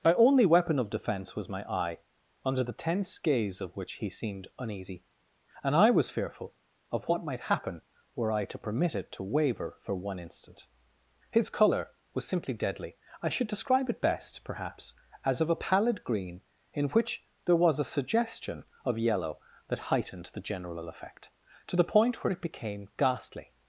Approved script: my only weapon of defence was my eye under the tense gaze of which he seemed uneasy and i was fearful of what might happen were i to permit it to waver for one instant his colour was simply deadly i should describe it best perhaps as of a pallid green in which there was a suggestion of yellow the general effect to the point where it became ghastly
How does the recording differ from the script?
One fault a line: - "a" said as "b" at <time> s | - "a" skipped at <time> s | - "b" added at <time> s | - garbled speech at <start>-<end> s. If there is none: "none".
- "that heightened" added at 19.7 s